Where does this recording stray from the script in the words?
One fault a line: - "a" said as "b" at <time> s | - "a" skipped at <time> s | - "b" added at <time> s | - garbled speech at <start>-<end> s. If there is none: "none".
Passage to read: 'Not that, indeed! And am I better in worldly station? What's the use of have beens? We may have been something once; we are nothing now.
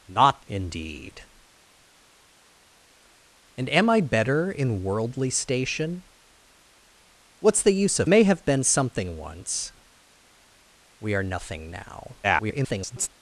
- "that" skipped at 0.4 s
- "have beens We" skipped at 8.1 s
- garbled speech at 12.2-13.1 s